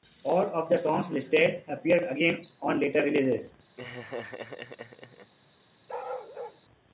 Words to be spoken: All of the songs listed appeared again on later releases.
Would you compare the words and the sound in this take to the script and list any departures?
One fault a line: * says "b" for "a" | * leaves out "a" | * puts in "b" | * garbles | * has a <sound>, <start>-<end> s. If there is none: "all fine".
* has a laugh, 3.8-5.3 s
* has a bark, 5.9-6.6 s